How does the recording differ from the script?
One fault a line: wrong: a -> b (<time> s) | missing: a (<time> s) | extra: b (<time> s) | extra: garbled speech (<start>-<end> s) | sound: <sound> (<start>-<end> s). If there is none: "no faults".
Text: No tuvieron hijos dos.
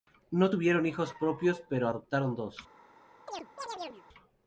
extra: propios pero adoptaron (1.2 s)
sound: chirp (3.3-4.0 s)